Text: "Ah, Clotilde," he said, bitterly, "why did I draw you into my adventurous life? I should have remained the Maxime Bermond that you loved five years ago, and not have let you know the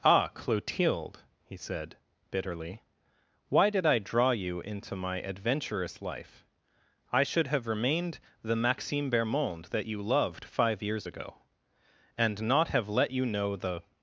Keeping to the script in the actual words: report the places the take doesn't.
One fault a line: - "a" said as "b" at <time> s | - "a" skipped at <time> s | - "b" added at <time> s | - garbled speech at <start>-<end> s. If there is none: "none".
none